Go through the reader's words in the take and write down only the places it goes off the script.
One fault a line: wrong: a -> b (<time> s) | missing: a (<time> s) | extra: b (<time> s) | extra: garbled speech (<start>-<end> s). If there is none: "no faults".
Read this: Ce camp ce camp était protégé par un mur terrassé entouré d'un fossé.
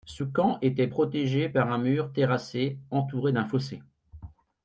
missing: ce camp (0.6 s)